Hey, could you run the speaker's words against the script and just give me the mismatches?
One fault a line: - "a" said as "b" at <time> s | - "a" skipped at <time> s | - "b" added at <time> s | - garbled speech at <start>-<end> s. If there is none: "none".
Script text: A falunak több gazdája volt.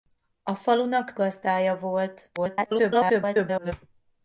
- "több" skipped at 1.1 s
- garbled speech at 2.4-3.7 s